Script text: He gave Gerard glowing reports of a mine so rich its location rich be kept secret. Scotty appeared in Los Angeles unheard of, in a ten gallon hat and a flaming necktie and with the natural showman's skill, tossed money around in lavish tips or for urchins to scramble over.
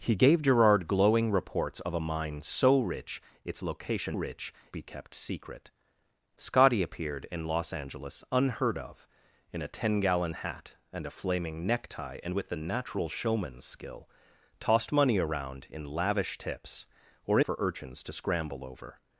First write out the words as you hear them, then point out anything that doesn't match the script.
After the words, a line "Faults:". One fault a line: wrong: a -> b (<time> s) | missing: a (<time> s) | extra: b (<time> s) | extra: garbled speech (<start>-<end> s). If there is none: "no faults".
He gave Gerard glowing reports of a mine so rich its location rich be kept secret. Scotty appeared in Los Angeles unheard of, in a ten gallon hat and a flaming necktie and with the natural showman's skill, tossed money around in lavish tips or for urchins to scramble over.
Faults:
no faults